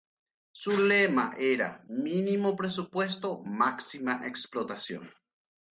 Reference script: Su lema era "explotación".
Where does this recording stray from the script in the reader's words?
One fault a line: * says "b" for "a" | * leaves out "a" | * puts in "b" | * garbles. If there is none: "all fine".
* puts in "mínimo presupuesto máxima"